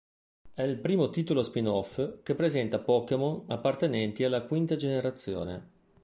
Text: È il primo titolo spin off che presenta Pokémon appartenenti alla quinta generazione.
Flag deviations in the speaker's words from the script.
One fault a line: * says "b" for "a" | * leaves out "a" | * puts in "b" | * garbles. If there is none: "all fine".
all fine